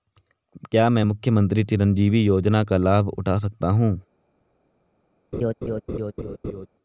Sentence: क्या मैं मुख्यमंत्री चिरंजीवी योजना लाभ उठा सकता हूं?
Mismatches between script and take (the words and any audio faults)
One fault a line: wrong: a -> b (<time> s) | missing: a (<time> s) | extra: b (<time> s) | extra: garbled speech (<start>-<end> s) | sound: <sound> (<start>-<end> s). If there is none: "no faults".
extra: का (2.6 s)
sound: laugh (5.3-6.7 s)